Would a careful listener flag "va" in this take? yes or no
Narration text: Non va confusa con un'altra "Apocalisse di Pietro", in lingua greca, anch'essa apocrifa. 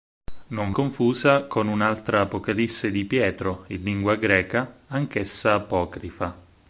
yes